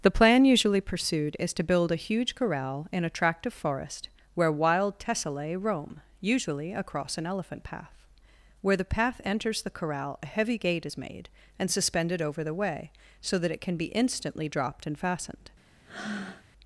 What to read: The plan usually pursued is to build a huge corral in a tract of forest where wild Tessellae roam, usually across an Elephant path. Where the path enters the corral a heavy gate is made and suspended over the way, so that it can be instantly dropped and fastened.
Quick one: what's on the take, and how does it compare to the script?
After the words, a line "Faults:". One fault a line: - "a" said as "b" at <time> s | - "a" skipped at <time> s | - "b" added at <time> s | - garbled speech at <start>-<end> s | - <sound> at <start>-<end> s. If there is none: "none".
The plan usually pursued is to build a huge corral in a tract of forest where wild Tessellae roam, usually across an Elephant path. Where the path enters the corral a heavy gate is made and suspended over the way, so that it can be instantly dropped and fastened.
Faults:
- breath at 15.8-16.4 s